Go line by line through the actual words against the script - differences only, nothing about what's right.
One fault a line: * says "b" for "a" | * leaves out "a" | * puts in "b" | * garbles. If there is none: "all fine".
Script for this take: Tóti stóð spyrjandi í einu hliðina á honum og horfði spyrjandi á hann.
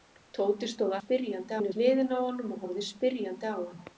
all fine